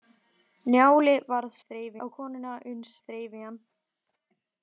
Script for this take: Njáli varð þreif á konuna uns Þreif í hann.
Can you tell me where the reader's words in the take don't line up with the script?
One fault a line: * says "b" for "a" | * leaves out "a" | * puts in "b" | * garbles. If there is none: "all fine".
all fine